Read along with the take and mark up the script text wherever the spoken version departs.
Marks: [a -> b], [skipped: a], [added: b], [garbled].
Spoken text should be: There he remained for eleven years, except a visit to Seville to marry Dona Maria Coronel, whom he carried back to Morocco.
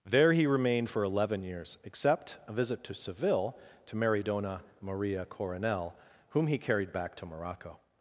There he remained for eleven years, except a visit to Seville to marry Dona Maria Coronel, whom he carried back to Morocco.